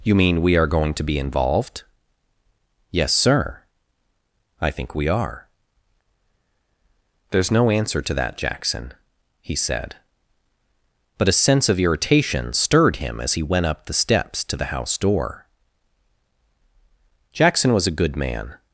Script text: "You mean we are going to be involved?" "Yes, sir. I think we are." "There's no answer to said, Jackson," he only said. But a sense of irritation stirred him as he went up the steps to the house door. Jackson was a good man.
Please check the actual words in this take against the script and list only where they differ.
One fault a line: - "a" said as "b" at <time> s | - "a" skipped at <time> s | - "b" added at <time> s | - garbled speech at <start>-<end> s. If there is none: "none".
- "said" said as "that" at 8.1 s
- "only" skipped at 9.6 s